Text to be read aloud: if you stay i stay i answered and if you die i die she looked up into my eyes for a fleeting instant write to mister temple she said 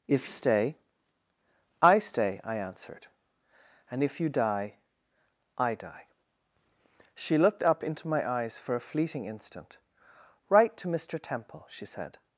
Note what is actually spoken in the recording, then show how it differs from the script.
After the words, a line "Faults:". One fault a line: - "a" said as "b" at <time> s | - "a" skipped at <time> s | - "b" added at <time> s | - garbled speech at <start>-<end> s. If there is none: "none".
if stay i stay i answered and if you die i die she looked up into my eyes for a fleeting instant write to mister temple she said
Faults:
- "you" skipped at 0.3 s